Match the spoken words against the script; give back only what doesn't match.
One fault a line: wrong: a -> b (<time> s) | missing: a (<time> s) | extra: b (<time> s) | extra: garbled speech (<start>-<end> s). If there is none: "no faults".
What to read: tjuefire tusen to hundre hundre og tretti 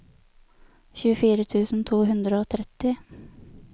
missing: hundre (2.4 s)